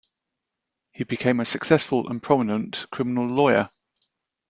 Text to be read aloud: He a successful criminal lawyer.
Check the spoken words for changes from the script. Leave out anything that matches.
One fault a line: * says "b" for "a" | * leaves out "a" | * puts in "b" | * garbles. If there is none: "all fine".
* puts in "became"
* puts in "and prominent"